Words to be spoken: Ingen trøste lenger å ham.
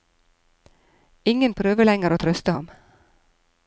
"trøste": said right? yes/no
no